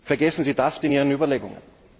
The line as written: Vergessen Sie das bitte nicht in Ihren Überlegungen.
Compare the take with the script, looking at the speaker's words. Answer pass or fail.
fail